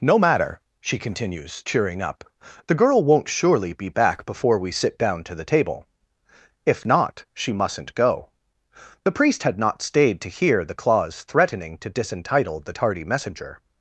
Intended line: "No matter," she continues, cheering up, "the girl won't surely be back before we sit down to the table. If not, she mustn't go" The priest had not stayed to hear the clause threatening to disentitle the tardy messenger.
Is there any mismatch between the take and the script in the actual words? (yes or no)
no